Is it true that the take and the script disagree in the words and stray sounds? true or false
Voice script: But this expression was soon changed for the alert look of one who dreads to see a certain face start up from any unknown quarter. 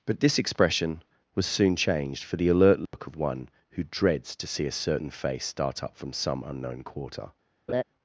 true